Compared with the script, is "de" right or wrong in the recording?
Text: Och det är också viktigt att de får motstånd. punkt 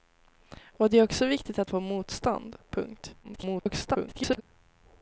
wrong